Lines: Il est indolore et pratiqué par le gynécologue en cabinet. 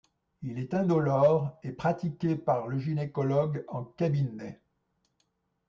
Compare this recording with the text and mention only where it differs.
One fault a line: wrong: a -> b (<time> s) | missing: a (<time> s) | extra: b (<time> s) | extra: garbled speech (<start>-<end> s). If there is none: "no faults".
no faults